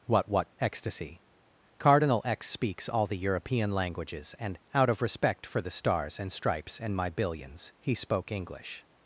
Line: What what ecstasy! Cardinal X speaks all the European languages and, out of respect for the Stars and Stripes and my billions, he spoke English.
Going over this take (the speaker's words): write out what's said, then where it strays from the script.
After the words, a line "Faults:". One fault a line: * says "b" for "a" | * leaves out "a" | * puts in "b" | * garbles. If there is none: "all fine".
What what ecstasy! Cardinal X speaks all the European languages and, out of respect for the Stars and Stripes and my billions, he spoke English.
Faults:
all fine